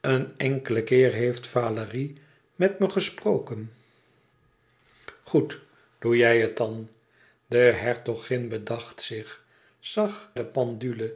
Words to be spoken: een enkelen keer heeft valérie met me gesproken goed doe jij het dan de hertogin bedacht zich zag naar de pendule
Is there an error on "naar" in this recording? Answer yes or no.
yes